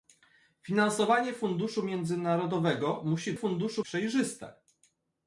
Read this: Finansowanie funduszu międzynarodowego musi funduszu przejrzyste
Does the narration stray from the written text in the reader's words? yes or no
no